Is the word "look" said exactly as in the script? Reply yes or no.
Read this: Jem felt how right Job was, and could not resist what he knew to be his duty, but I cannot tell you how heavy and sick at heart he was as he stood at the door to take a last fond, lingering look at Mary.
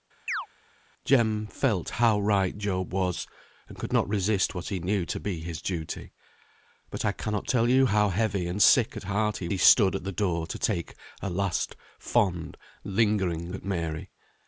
no